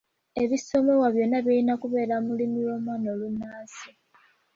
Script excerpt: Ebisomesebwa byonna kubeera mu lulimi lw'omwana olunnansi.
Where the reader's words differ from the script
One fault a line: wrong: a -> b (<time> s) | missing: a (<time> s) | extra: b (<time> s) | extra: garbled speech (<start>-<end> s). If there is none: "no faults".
extra: birina (1.4 s)